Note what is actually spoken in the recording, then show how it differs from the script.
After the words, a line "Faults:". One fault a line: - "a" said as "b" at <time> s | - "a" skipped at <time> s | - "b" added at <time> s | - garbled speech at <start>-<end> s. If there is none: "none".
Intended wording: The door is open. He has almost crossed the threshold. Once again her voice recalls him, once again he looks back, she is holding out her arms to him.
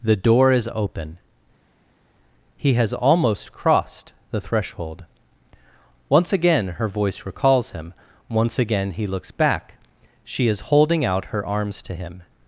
The door is open. He has almost crossed the threshold. Once again her voice recalls him, once again he looks back, she is holding out her arms to him.
Faults:
none